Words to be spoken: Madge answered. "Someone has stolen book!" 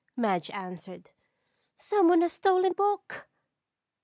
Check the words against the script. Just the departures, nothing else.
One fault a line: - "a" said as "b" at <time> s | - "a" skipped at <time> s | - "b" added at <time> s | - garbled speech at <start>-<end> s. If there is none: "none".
none